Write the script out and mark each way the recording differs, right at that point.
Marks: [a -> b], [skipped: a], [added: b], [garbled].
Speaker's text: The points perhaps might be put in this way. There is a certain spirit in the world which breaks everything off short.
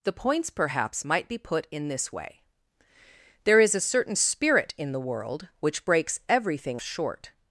The points perhaps might be put in this way. There is a certain spirit in the world which breaks everything [skipped: off] short.